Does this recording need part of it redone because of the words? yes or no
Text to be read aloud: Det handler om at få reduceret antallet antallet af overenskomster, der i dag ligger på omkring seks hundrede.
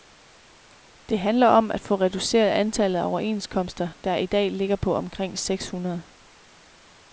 yes